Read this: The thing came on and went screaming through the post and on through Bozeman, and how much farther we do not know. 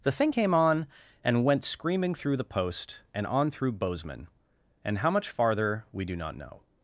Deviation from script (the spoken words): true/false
false